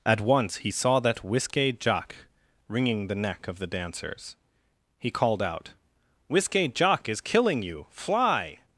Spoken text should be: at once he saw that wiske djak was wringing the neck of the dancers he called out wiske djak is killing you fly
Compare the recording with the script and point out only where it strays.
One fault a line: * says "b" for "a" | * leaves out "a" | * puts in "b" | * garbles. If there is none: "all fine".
* leaves out "was"